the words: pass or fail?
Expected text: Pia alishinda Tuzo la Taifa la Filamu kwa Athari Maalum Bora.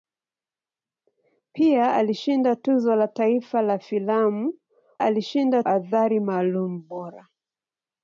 fail